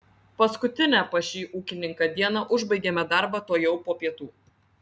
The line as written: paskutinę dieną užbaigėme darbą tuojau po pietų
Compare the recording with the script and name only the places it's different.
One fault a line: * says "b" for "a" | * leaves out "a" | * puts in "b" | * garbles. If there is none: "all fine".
* puts in "pas šį ūkininką"